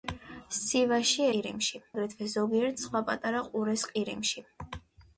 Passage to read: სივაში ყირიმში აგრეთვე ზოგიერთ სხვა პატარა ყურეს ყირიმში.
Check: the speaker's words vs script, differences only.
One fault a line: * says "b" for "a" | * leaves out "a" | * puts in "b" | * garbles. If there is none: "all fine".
all fine